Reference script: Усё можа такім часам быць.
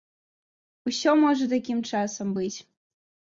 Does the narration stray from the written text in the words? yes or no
no